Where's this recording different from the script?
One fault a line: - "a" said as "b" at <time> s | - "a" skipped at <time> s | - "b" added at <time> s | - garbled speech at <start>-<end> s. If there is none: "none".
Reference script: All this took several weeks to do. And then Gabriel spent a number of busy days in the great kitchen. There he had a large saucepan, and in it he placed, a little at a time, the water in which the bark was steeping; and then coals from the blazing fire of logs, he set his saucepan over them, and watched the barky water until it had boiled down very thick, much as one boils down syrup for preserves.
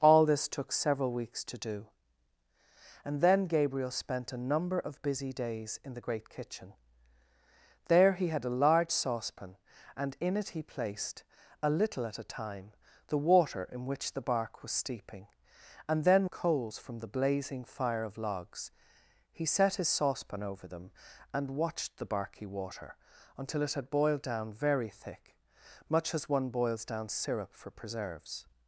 none